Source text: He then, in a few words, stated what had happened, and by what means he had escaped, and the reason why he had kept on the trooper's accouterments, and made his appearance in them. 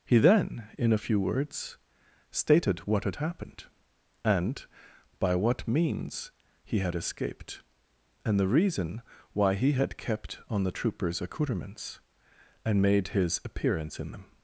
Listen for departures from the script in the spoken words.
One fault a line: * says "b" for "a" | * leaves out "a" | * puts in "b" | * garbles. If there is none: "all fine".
all fine